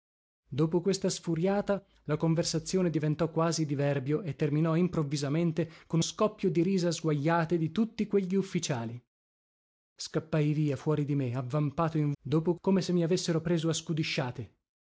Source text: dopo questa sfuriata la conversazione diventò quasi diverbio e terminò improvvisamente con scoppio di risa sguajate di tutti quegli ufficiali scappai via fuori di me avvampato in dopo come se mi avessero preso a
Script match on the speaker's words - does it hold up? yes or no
yes